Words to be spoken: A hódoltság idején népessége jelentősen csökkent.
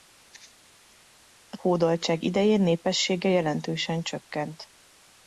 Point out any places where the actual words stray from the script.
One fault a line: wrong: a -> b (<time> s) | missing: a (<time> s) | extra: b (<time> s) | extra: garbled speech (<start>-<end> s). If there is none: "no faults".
no faults